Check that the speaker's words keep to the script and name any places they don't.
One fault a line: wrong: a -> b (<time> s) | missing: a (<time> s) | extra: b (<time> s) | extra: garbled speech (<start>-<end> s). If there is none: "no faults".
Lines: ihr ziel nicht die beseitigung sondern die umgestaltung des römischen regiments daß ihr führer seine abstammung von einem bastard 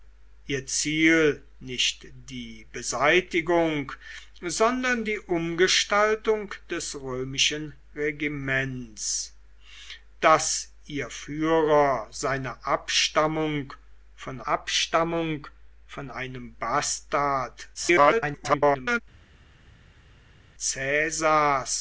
extra: abstammung von (14.5 s)
extra: garbled speech (17.7-19.0 s)